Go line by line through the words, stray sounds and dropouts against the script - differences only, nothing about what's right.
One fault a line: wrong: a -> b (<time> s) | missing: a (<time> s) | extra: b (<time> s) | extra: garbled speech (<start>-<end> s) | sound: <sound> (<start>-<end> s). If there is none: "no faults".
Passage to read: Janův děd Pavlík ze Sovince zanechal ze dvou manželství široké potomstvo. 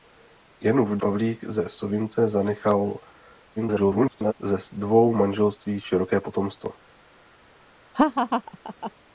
missing: děd (1.0 s)
extra: garbled speech (3.6-4.3 s)
sound: laugh (7.9-8.9 s)